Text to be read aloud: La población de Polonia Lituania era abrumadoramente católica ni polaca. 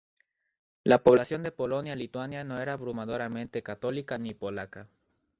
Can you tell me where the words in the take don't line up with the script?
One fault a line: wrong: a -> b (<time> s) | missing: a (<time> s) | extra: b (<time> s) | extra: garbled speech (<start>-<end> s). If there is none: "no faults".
extra: no (2.4 s)